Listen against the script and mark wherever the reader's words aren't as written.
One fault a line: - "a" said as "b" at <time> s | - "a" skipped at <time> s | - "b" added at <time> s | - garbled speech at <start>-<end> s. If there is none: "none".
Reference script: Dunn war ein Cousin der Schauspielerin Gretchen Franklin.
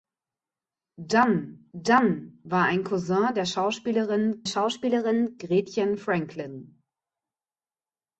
- "dunn" added at 1.7 s
- "Schauspielerin" added at 4.4 s